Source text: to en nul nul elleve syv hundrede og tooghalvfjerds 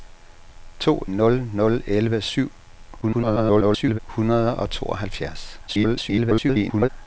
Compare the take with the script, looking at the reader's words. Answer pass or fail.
fail